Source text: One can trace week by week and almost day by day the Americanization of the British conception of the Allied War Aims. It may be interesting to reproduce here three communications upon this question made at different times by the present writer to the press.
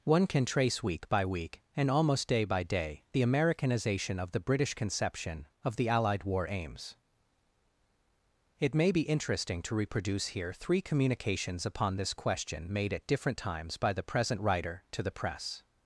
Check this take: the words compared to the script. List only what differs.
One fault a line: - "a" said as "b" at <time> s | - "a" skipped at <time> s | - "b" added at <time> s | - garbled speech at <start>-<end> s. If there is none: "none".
none